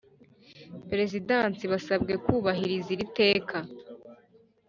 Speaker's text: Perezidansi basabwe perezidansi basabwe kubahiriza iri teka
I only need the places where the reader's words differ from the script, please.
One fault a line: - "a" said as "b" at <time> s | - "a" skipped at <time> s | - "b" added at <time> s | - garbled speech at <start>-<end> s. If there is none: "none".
- "perezidansi basabwe" skipped at 2.1 s